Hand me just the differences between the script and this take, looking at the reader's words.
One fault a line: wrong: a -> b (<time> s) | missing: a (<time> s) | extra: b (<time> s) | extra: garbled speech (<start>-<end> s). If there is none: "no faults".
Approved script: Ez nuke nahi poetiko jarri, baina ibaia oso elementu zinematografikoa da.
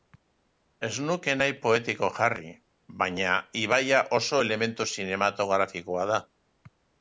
no faults